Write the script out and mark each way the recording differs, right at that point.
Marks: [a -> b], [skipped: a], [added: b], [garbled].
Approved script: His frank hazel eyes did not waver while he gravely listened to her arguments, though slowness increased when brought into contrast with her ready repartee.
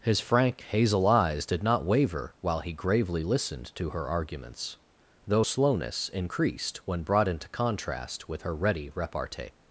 His frank hazel eyes did not waver while he gravely listened to her arguments, though slowness increased when brought into contrast with her ready repartee.